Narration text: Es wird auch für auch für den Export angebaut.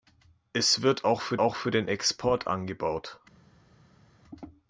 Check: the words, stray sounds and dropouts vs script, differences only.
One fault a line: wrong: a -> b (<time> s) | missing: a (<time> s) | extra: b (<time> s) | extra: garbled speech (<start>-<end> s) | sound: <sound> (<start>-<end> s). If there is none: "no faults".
no faults